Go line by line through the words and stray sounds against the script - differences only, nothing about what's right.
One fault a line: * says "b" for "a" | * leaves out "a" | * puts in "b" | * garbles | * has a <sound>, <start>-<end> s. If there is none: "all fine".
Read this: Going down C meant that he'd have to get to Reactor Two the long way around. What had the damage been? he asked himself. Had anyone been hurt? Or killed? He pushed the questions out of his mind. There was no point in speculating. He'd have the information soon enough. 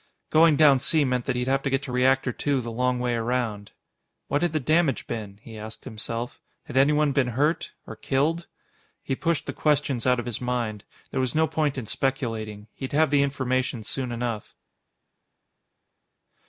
all fine